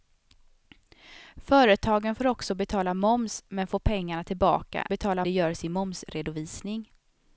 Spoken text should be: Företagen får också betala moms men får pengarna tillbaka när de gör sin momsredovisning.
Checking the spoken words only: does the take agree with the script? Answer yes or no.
no